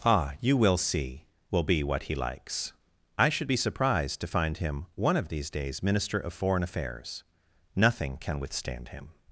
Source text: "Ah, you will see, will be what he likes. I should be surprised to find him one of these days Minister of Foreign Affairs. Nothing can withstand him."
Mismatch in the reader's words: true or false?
false